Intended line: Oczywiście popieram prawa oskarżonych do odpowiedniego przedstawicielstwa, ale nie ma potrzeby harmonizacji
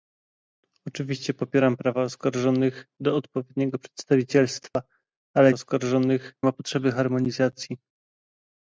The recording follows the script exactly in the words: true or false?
false